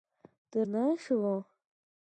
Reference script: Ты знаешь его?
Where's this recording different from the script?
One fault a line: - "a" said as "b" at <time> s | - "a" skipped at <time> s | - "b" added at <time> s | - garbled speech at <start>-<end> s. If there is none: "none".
none